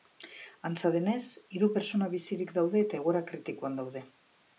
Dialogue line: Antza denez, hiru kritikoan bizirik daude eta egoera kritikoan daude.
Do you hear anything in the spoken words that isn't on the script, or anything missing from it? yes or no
yes